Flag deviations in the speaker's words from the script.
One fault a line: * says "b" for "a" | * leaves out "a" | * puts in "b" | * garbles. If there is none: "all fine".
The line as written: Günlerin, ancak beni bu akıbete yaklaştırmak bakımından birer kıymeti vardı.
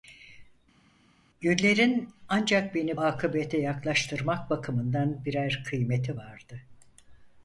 * leaves out "bu"